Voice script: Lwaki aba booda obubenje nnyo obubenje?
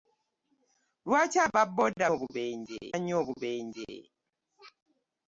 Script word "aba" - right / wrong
right